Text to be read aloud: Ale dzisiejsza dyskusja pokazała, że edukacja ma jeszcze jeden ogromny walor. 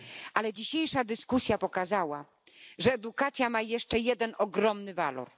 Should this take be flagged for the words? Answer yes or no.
no